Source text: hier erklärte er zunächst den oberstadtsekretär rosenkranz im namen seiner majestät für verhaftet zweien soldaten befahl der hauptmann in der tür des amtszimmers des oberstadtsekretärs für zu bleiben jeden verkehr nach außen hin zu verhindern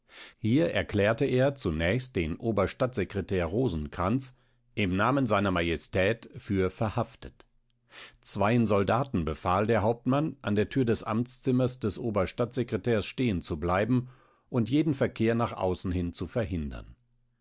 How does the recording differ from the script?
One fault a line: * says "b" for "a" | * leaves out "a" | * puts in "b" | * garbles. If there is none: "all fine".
* says "an" for "in"
* says "stehen" for "für"
* puts in "und"